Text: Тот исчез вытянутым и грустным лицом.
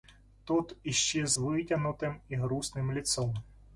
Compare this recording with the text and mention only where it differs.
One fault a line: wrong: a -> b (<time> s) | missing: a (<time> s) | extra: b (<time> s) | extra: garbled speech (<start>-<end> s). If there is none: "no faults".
no faults